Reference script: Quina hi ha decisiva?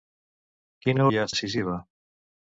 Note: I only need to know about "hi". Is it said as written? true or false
true